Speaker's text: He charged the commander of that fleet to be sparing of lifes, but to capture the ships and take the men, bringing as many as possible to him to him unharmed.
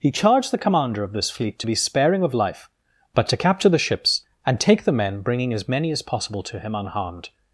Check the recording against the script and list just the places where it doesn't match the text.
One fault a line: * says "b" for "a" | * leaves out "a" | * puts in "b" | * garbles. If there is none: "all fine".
* says "this" for "that"
* says "life" for "lifes"
* leaves out "to him"